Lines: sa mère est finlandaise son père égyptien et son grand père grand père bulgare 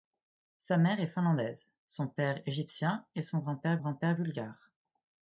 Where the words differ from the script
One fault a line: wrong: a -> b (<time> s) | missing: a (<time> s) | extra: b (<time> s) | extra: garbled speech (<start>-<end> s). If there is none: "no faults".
no faults